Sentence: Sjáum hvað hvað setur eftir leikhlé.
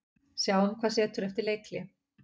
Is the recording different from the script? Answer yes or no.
yes